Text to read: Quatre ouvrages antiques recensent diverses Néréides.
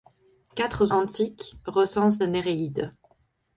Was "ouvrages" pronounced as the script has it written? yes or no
no